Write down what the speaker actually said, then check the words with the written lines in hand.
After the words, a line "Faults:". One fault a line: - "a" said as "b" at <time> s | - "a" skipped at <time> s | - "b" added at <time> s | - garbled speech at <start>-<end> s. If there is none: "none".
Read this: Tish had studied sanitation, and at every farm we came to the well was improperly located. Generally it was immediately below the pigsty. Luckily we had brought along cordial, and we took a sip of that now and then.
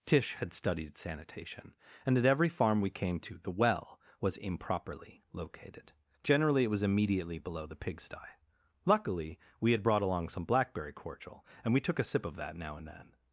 Tish had studied sanitation, and at every farm we came to the well was improperly located. Generally it was immediately below the pigsty. Luckily we had brought along some blackberry cordial, and we took a sip of that now and then.
Faults:
- "some blackberry" added at 10.3 s